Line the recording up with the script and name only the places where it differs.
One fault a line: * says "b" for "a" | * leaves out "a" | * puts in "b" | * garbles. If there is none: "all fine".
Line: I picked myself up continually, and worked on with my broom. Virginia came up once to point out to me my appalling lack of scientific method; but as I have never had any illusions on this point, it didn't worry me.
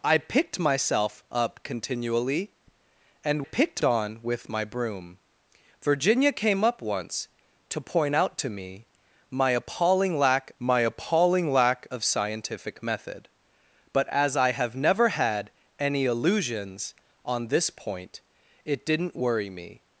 * says "picked" for "worked"
* puts in "my appalling lack"